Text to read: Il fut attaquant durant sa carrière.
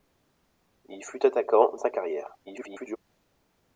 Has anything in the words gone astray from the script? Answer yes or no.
yes